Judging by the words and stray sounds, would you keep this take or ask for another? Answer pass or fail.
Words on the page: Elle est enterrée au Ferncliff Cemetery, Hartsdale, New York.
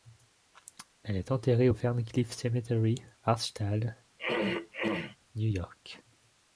fail